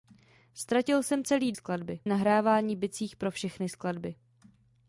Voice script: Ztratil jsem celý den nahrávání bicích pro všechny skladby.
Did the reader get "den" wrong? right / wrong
wrong